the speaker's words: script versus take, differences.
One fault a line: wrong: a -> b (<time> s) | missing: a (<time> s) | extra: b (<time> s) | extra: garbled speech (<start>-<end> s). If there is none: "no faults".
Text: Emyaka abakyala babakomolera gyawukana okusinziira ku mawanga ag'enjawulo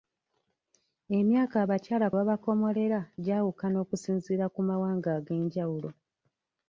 no faults